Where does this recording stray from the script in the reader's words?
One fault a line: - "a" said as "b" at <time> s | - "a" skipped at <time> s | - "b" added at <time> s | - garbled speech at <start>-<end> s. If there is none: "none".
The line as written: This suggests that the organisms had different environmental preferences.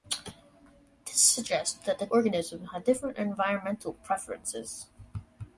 none